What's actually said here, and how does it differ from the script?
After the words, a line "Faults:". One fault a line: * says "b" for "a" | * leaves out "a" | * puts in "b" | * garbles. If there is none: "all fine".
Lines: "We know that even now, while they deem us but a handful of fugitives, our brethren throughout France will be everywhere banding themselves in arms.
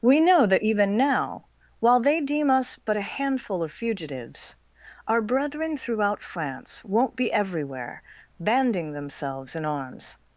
"We know that even now, while they deem us but a handful of fugitives, our brethren throughout France won't be everywhere banding themselves in arms.
Faults:
* says "won't" for "will"